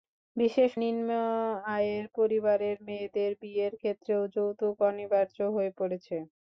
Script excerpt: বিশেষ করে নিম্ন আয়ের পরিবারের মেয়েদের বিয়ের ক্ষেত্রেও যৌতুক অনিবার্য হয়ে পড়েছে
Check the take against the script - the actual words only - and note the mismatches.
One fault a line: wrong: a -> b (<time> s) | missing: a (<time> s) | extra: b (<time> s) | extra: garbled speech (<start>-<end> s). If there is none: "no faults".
missing: করে (0.7 s)